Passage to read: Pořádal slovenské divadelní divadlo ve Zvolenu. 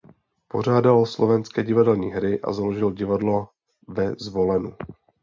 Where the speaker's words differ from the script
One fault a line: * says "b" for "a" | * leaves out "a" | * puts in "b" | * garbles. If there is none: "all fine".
* puts in "hry a založil"